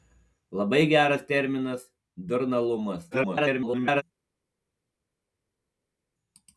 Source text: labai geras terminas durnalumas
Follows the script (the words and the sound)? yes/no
no